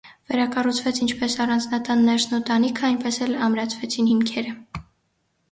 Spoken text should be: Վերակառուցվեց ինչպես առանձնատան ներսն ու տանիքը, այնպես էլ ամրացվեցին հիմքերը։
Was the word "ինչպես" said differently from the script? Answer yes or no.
no